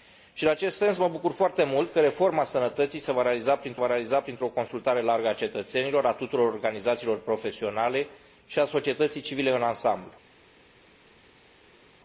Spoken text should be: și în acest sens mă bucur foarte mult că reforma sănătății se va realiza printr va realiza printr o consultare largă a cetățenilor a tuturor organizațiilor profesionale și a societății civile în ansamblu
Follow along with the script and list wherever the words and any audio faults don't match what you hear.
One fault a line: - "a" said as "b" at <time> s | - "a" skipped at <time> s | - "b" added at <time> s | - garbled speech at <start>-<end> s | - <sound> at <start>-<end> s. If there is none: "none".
none